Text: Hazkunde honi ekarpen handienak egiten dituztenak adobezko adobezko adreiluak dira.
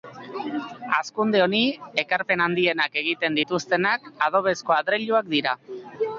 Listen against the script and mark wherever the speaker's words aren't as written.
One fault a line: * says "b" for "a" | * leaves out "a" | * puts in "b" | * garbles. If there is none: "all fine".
* leaves out "adobezko"